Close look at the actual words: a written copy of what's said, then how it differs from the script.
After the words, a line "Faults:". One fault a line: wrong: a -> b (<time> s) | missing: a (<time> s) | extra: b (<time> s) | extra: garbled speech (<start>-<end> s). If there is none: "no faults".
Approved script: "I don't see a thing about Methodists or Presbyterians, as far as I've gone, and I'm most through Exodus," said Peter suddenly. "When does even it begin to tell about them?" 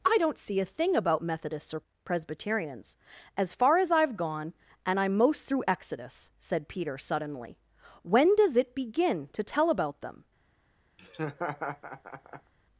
"I don't see a thing about Methodists or Presbyterians, as far as I've gone, and I'm most through Exodus," said Peter suddenly. "When does it begin to tell about them?"
Faults:
missing: even (8.6 s)